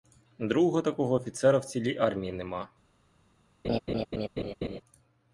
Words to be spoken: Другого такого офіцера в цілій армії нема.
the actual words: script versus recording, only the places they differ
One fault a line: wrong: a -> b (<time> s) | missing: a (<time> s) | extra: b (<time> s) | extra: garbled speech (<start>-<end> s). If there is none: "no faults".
no faults